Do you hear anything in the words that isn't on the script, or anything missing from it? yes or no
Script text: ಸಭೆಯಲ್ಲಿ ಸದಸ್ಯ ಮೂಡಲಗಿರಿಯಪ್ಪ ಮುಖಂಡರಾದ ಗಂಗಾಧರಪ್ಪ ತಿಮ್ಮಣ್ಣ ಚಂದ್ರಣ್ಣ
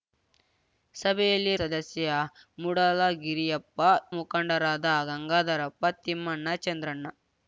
no